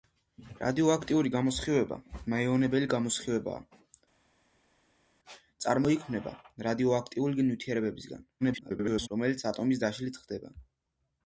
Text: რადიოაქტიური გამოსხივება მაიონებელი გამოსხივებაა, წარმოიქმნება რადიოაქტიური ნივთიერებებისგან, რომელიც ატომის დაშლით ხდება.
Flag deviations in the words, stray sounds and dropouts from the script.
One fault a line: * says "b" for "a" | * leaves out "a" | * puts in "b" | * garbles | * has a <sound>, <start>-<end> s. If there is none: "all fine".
* garbles